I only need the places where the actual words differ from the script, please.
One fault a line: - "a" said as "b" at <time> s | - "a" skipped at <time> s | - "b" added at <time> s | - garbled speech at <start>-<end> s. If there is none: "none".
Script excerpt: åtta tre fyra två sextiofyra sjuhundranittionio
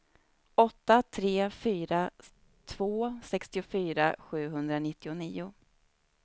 none